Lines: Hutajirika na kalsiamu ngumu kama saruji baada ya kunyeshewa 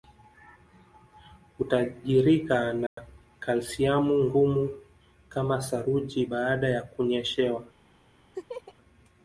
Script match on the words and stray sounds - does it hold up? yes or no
no